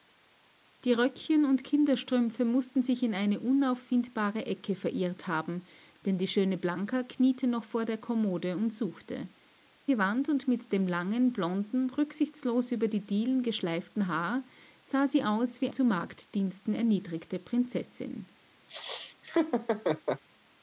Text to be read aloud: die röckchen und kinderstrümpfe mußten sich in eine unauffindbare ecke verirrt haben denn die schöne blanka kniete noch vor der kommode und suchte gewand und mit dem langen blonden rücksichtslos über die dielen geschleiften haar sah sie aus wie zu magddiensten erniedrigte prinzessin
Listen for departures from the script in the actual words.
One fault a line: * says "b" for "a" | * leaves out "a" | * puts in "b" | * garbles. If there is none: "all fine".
all fine